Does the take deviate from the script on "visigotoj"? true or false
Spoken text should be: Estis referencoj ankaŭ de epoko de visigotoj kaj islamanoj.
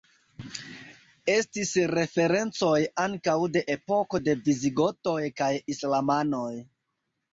false